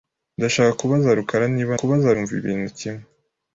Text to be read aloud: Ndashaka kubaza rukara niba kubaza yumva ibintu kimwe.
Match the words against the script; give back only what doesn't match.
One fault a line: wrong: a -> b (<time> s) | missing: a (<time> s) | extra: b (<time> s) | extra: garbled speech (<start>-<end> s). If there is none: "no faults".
no faults